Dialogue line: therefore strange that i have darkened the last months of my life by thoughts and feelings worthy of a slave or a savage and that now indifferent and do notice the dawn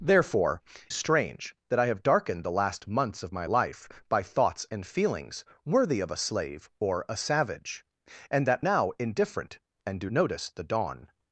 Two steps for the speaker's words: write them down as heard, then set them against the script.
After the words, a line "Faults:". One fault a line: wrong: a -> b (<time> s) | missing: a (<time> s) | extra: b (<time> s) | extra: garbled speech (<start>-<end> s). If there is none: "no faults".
therefore strange that i have darkened the last months of my life by thoughts and feelings worthy of a slave or a savage and that now indifferent and do notice the dawn
Faults:
no faults